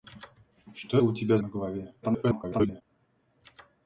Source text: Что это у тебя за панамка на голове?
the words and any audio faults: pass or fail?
fail